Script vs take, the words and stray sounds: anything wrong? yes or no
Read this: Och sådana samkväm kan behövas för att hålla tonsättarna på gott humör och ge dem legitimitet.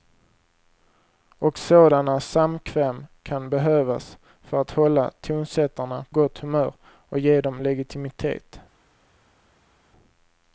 yes